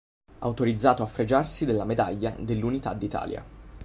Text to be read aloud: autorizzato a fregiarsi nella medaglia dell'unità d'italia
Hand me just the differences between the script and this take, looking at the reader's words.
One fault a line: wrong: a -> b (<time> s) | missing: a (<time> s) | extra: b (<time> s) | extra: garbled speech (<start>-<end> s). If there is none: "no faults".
wrong: nella -> della (1.6 s)